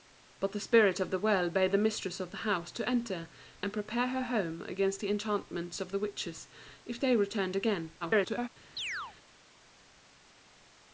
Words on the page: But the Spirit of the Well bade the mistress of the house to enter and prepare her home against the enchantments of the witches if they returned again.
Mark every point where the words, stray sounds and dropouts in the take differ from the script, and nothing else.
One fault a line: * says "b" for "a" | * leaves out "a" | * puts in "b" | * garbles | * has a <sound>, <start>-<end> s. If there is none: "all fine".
* garbles
* has a chirp, 8.8-9.2 s